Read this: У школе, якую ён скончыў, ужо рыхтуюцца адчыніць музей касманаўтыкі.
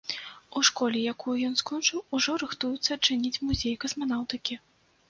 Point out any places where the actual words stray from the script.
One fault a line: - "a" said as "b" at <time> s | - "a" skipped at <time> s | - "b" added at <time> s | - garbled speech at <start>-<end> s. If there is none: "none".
none